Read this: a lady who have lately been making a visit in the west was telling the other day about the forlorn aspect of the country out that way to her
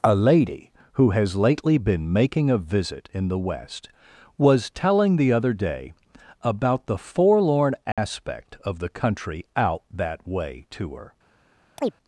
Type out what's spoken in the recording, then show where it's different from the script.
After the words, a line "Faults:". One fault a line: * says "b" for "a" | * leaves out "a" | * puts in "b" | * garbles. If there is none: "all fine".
a lady who has lately been making a visit in the west was telling the other day about the forlorn aspect of the country out that way to her
Faults:
* says "has" for "have"